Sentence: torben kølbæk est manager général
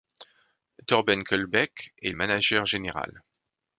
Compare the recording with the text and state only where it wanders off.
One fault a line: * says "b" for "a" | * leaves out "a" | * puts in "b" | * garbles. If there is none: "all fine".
all fine